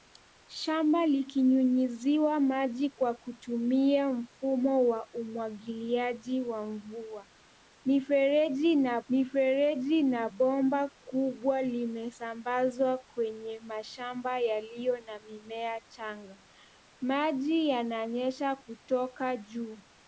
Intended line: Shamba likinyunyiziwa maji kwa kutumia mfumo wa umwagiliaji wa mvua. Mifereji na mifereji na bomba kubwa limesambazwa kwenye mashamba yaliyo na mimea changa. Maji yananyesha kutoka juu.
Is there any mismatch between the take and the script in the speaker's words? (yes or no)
no